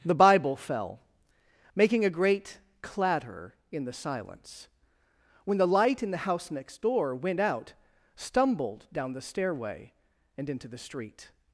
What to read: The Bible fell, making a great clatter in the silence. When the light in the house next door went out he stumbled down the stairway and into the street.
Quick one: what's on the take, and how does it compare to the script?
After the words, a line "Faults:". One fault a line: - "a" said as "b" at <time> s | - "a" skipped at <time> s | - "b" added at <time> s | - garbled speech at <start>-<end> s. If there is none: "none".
The Bible fell, making a great clatter in the silence. When the light in the house next door went out stumbled down the stairway and into the street.
Faults:
- "he" skipped at 7.7 s